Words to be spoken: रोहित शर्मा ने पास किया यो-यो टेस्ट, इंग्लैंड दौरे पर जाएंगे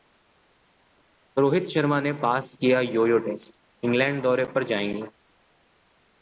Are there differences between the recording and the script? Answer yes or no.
no